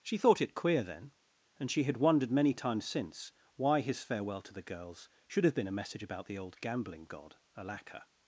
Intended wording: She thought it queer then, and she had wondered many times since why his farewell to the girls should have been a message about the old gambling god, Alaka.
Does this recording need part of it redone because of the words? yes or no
no